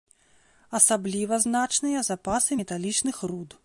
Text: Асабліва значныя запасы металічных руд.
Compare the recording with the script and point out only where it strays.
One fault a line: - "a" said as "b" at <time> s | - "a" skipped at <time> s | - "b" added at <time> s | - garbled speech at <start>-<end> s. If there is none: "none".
none